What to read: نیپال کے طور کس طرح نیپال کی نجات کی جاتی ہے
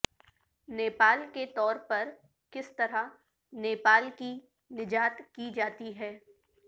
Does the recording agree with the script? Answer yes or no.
no